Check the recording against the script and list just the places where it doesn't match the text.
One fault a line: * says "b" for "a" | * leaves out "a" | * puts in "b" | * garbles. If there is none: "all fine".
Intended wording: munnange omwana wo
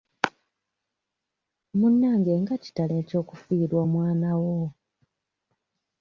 * puts in "nga kitalo eky'okufiirwa"